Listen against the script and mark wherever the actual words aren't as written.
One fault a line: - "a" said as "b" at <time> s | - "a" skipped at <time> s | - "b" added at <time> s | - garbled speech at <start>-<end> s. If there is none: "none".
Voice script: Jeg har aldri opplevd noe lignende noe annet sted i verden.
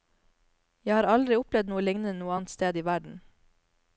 none